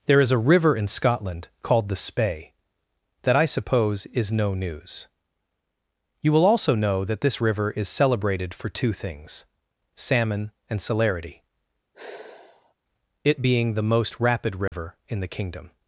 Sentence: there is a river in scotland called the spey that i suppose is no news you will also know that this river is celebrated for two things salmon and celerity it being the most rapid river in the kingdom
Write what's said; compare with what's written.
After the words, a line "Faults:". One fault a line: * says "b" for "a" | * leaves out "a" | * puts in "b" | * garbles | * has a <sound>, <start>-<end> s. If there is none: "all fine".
there is a river in scotland called the spey that i suppose is no news you will also know that this river is celebrated for two things salmon and celerity it being the most rapid river in the kingdom
Faults:
* has a sigh, 11.9-12.7 s
* has a dropout, 14.7-14.7 s